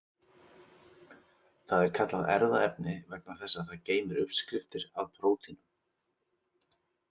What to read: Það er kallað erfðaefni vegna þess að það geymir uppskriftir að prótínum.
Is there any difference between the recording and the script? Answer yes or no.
no